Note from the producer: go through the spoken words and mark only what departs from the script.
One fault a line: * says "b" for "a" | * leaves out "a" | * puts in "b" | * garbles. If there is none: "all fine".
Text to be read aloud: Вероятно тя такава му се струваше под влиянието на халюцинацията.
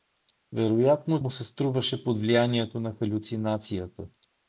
* leaves out "тя такава"